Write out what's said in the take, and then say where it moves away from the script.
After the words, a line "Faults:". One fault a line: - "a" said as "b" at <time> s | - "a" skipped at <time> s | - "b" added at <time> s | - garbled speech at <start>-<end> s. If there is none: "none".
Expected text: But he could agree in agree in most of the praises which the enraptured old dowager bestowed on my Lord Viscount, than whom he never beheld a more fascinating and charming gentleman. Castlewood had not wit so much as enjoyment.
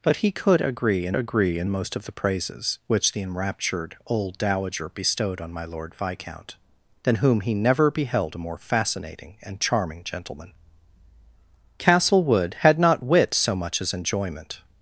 But he could agree in agree in most of the praises which the enraptured old dowager bestowed on my Lord Viscount, than whom he never beheld a more fascinating and charming gentleman. Castlewood had not wit so much as enjoyment.
Faults:
none